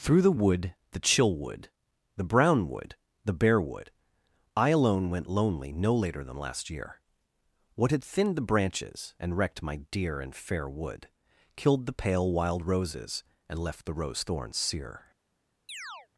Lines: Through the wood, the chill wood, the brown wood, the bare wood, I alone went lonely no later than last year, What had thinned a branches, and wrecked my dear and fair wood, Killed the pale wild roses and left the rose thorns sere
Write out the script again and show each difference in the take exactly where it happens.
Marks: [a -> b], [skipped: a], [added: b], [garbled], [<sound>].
Through the wood, the chill wood, the brown wood, the bare wood, I alone went lonely no later than last year, What had thinned [a -> the] branches, and wrecked my dear and fair wood, Killed the pale wild roses and left the rose thorns sere [chirp]